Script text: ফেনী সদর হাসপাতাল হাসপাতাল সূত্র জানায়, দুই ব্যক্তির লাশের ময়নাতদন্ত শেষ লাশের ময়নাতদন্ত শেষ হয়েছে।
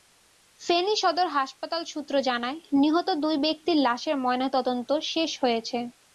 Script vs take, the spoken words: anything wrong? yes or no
yes